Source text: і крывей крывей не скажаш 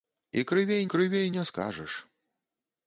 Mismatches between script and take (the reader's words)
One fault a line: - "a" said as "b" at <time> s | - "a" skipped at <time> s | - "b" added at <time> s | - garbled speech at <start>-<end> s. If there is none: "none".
none